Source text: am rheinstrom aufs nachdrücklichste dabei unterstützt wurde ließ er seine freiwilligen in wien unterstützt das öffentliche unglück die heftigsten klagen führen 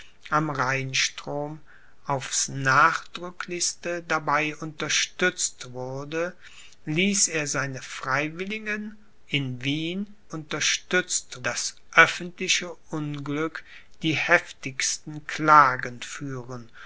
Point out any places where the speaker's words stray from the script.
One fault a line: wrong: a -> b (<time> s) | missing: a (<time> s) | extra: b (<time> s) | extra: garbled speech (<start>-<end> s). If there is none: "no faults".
no faults